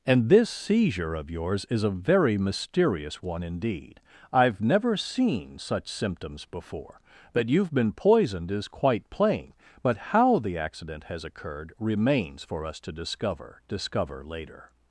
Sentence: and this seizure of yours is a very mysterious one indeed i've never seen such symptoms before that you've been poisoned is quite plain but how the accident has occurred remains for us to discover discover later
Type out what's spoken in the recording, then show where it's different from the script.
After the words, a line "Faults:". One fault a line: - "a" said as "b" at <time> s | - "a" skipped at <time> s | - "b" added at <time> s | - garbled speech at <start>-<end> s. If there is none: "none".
and this seizure of yours is a very mysterious one indeed i've never seen such symptoms before that you've been poisoned is quite plain but how the accident has occurred remains for us to discover discover later
Faults:
none